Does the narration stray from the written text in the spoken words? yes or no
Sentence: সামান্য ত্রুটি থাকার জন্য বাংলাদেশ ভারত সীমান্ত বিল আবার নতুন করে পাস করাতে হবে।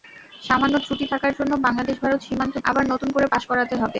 yes